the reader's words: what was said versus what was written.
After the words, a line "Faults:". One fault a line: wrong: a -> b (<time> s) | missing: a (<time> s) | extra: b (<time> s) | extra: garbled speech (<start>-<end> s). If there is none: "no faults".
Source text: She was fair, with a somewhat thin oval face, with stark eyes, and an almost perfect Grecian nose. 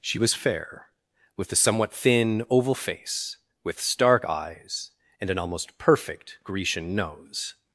She was fair, with a somewhat thin oval face, with stark eyes, and an almost perfect Grecian nose.
Faults:
no faults